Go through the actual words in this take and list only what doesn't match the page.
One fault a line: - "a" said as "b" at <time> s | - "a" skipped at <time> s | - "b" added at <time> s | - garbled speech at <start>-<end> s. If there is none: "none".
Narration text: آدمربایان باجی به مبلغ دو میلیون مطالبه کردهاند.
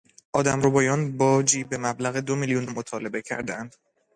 none